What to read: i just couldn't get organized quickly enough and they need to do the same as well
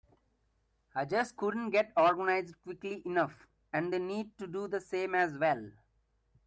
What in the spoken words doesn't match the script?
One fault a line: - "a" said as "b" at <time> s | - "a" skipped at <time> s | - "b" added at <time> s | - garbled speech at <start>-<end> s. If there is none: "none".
none